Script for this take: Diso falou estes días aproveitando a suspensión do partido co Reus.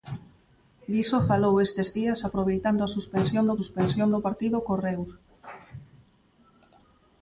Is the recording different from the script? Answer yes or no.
yes